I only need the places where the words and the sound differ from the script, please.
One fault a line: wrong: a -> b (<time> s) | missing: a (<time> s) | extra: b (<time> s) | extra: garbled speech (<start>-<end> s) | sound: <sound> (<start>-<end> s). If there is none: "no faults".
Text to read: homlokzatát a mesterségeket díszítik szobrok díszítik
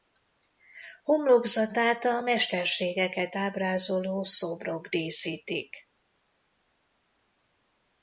wrong: díszítik -> ábrázoló (3.4 s)